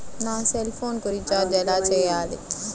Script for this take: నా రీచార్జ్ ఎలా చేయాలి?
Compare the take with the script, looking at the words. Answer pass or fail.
fail